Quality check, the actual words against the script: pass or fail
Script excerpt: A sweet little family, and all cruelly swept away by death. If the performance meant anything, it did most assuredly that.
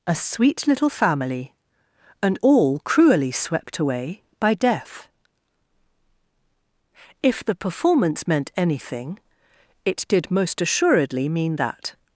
fail